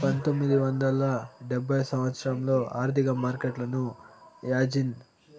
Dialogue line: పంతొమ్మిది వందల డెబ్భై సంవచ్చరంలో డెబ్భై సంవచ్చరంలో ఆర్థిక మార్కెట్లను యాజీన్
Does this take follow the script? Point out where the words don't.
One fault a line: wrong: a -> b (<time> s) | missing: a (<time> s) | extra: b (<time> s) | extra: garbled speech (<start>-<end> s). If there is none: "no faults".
missing: డెబ్భై సంవచ్చరంలో (2.5 s)